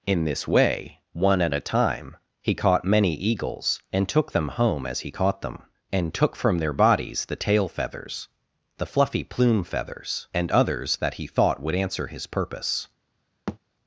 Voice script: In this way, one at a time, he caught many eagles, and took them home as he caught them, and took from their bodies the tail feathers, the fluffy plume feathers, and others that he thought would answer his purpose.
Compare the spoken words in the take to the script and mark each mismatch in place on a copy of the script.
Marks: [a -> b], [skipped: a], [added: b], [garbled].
In this way, one at a time, he caught many eagles, and took them home as he caught them, and took from their bodies the tail feathers, the fluffy plume feathers, and others that he thought would answer his purpose.